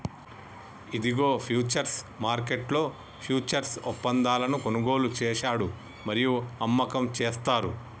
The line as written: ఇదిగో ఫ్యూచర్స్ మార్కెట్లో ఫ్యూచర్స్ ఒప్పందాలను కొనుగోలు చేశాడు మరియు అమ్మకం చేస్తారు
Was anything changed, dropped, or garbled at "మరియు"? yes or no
no